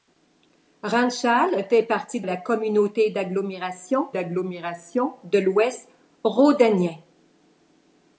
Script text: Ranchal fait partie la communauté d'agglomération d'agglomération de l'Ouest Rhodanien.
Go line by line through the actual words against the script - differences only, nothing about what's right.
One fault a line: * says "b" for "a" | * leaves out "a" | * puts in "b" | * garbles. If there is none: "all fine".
all fine